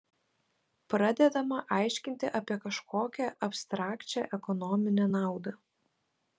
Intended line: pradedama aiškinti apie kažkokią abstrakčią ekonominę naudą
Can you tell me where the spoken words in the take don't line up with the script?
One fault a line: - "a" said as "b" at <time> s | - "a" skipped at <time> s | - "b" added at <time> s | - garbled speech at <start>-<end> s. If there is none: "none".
none